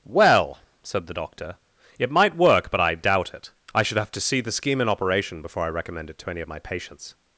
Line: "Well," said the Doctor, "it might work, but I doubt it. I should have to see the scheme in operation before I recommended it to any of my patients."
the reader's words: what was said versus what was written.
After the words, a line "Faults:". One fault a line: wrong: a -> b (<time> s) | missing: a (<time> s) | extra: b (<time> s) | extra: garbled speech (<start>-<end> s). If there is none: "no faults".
"Well," said the Doctor, "it might work, but I doubt it. I should have to see the scheme in operation before I recommend it to any of my patients."
Faults:
wrong: recommended -> recommend (5.7 s)